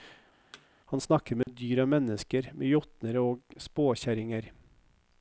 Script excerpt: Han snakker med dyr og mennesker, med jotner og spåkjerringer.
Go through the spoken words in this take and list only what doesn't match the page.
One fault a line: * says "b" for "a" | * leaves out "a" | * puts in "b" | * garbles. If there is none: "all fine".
all fine